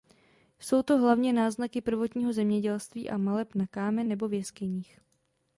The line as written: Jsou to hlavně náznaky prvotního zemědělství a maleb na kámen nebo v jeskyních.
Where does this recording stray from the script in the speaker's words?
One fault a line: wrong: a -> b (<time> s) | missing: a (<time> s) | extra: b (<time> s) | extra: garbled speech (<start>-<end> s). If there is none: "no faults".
no faults